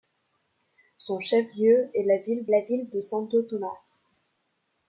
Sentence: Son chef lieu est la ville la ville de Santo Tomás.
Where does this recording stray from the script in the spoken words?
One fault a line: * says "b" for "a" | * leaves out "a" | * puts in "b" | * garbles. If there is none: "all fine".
all fine